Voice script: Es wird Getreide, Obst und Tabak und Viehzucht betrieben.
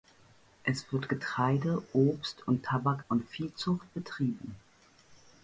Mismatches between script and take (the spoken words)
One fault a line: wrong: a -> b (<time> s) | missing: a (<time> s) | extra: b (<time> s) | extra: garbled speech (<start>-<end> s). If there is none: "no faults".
no faults